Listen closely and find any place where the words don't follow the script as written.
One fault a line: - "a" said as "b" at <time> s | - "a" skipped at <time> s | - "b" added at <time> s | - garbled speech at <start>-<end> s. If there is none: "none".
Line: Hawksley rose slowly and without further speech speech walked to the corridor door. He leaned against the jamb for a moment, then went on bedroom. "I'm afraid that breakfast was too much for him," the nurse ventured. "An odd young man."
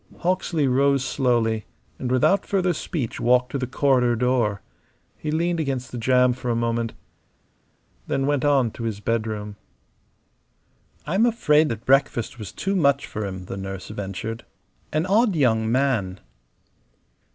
- "speech" skipped at 3.2 s
- "to his" added at 8.7 s